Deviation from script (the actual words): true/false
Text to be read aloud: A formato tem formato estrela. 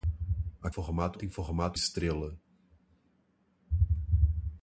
false